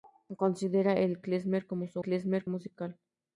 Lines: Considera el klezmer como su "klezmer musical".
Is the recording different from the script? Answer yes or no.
no